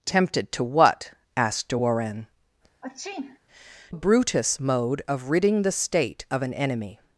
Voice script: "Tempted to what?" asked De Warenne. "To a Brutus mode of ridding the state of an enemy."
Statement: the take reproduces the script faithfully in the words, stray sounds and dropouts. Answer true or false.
false